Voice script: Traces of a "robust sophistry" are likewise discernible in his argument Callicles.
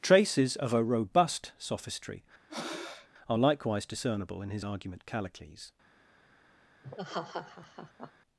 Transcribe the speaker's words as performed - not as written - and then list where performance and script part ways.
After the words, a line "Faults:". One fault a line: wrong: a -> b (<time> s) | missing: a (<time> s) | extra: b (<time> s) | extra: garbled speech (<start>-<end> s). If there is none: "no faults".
Traces of a "robust sophistry" are likewise discernible in his argument Callicles.
Faults:
no faults